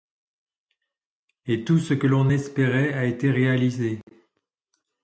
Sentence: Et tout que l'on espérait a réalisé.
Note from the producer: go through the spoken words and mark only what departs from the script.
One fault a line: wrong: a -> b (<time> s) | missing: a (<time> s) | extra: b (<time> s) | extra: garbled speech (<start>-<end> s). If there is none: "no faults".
extra: ce (1.8 s)
extra: été (3.0 s)